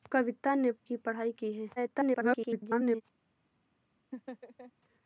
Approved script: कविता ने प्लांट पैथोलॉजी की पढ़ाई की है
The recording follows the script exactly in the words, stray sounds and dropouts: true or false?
false